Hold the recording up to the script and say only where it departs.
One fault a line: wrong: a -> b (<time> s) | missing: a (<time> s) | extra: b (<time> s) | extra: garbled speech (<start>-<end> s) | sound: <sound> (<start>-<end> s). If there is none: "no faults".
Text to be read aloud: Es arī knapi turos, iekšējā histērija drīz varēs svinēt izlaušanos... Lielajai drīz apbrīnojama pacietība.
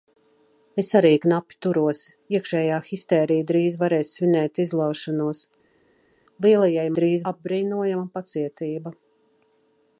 no faults